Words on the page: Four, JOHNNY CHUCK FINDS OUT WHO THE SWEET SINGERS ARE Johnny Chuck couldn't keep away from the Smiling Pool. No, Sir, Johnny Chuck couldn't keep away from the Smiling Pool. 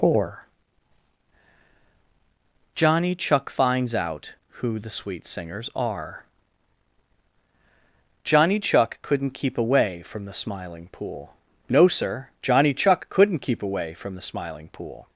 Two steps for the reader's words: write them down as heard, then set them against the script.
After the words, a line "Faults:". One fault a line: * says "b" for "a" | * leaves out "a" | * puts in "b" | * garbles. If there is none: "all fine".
Four, JOHNNY CHUCK FINDS OUT WHO THE SWEET SINGERS ARE Johnny Chuck couldn't keep away from the Smiling Pool. No, Sir, Johnny Chuck couldn't keep away from the Smiling Pool.
Faults:
all fine